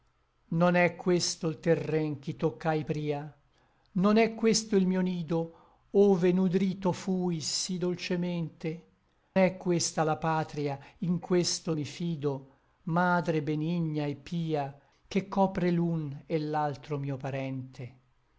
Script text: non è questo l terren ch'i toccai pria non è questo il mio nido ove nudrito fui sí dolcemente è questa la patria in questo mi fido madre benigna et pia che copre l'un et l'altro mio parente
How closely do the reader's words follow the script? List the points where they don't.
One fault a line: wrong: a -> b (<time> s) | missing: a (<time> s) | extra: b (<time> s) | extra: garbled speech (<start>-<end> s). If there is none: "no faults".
no faults